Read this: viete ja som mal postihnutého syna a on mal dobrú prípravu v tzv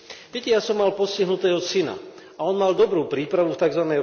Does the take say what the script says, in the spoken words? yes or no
yes